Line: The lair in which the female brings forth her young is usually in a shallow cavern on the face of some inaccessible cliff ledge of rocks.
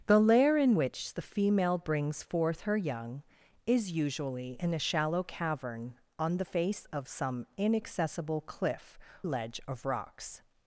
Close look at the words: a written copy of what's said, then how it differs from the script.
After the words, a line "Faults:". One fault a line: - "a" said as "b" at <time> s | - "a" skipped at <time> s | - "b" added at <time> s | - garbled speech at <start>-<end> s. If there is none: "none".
The lair in which the female brings forth her young is usually in a shallow cavern on the face of some inaccessible cliff ledge of rocks.
Faults:
none